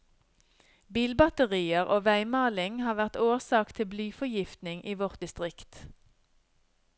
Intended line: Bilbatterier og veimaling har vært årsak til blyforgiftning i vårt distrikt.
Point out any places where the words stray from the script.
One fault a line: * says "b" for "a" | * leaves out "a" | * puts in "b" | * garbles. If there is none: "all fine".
all fine